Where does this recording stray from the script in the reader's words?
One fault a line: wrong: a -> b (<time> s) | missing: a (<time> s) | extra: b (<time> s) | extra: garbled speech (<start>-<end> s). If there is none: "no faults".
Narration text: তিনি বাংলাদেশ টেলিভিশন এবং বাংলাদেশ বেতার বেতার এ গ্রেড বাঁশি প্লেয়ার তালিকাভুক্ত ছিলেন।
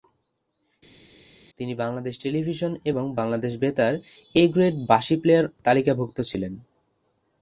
missing: বেতার (3.9 s)